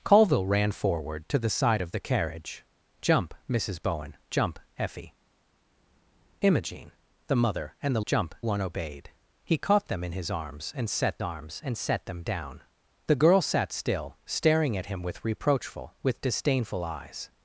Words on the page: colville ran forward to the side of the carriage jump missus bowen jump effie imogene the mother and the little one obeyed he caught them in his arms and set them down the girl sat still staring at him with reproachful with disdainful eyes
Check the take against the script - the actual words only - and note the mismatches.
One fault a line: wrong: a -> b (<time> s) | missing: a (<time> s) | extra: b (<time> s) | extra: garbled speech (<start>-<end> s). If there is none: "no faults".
wrong: little -> jump (8.1 s)
extra: arms and set (11.2 s)